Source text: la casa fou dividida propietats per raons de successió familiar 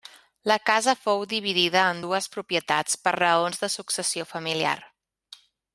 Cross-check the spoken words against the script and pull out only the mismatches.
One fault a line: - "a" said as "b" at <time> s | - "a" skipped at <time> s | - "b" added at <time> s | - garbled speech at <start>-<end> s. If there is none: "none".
- "en dues" added at 1.9 s